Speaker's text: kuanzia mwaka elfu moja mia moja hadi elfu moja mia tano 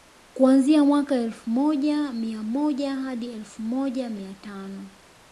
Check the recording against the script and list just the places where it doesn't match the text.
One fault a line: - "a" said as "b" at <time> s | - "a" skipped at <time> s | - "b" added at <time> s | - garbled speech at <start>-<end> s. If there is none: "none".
none